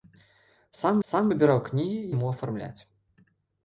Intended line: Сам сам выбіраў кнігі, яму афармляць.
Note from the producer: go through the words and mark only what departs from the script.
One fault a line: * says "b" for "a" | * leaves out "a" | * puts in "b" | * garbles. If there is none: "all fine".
all fine